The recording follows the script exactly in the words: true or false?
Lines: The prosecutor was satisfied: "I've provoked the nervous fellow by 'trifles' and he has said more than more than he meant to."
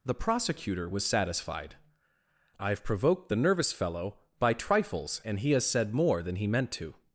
false